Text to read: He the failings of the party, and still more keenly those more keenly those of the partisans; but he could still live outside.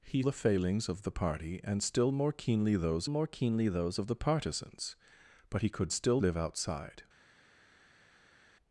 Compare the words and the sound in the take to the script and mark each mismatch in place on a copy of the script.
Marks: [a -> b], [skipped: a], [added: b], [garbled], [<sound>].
He the failings of the party, and still more keenly those more keenly those of the partisans; but he could still live outside.